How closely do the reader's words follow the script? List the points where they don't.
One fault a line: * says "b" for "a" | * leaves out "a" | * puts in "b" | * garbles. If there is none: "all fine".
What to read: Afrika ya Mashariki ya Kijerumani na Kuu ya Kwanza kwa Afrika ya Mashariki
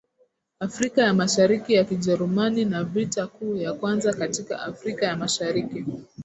* puts in "Vita"
* says "katika" for "kwa"